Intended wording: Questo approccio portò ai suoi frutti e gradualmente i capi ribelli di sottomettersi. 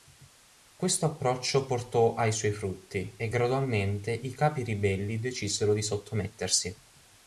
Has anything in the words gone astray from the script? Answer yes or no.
yes